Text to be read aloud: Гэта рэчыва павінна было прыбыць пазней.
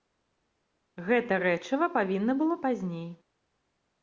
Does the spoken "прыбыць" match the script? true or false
false